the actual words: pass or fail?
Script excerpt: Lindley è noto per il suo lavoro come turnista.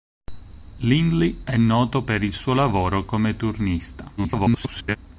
fail